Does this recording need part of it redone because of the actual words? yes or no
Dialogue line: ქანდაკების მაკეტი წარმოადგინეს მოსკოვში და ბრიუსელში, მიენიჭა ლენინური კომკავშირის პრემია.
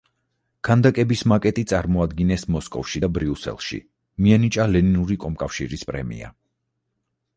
no